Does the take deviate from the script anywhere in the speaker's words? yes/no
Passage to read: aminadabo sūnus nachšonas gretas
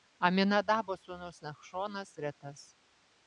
no